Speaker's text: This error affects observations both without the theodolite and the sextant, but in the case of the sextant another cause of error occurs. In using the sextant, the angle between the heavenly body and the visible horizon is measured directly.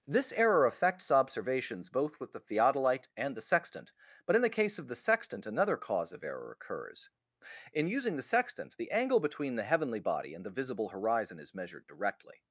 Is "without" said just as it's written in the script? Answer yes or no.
no